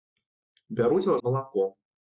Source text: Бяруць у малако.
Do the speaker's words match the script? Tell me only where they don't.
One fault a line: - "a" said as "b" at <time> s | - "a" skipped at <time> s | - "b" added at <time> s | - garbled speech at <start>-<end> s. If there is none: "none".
none